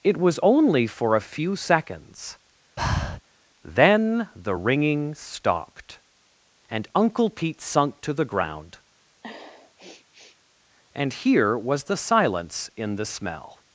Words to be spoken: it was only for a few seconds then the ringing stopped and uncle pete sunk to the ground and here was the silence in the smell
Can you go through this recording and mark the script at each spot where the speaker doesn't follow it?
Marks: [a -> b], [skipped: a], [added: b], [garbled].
it was only for a few seconds then the ringing stopped and uncle pete sunk to the ground and here was the silence in the smell